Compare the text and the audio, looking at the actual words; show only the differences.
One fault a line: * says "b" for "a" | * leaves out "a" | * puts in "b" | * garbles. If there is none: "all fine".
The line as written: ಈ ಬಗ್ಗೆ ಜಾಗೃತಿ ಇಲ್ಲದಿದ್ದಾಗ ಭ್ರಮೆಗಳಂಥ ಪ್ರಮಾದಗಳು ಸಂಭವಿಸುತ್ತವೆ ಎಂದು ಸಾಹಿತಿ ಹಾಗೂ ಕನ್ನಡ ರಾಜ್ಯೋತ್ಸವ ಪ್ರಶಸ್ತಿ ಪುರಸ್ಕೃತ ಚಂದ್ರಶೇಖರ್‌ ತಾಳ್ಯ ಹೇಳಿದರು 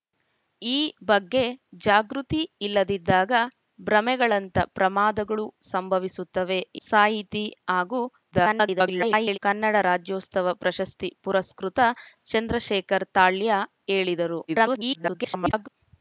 * leaves out "ಎಂದು"
* garbles
* garbles